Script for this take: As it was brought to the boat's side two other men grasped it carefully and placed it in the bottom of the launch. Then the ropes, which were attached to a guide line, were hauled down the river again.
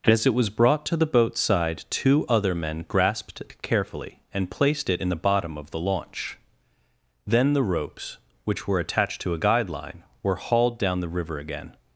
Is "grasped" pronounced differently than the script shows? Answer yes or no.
no